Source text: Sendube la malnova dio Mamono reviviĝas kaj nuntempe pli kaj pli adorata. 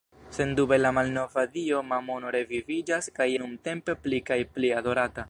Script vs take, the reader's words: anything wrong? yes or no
no